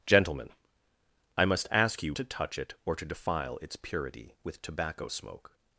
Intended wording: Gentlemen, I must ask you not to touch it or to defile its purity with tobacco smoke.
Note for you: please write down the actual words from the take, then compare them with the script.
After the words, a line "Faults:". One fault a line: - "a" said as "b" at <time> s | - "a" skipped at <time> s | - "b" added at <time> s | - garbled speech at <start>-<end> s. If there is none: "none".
Gentlemen, I must ask you to touch it or to defile its purity with tobacco smoke.
Faults:
- "not" skipped at 2.1 s